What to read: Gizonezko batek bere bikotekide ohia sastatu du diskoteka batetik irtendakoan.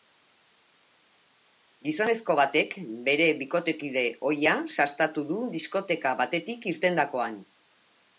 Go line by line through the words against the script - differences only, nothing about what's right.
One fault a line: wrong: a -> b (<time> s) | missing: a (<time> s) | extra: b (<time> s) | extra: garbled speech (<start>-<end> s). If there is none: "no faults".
no faults